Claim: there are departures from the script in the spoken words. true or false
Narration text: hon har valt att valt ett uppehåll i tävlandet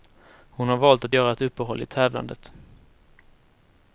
true